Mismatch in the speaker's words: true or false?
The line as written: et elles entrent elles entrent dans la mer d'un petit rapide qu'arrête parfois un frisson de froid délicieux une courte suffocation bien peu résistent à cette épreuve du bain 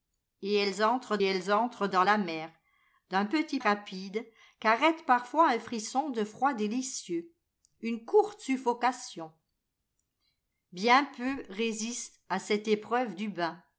false